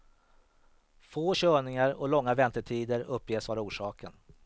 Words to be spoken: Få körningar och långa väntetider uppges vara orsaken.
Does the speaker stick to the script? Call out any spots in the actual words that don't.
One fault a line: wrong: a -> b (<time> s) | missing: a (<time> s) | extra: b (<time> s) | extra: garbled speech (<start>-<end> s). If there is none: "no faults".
no faults